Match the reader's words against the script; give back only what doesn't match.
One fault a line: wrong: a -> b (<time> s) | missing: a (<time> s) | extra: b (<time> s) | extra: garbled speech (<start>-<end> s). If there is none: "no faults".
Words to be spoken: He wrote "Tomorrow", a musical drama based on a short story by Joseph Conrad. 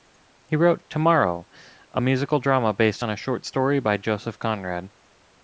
no faults